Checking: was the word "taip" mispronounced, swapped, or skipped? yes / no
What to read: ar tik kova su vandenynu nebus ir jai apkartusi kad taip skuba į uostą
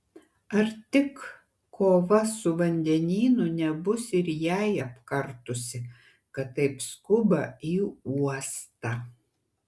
no